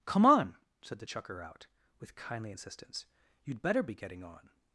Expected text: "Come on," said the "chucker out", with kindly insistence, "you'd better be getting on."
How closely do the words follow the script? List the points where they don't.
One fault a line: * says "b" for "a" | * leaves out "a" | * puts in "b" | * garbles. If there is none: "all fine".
all fine